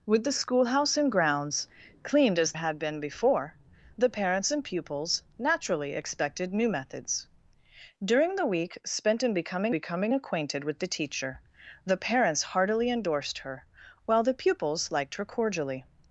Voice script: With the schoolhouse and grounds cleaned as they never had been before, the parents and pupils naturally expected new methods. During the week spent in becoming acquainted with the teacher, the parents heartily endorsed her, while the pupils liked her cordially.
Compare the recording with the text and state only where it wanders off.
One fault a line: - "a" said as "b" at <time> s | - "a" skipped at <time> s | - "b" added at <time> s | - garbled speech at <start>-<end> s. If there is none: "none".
- "they never" skipped at 2.5 s
- "becoming" added at 9.7 s